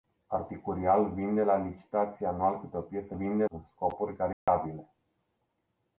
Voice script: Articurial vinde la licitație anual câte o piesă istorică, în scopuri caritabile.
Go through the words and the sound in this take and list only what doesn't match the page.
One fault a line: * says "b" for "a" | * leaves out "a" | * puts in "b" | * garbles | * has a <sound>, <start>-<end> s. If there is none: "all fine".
* says "vinde" for "istorică"
* has a dropout, 4.3-4.5 s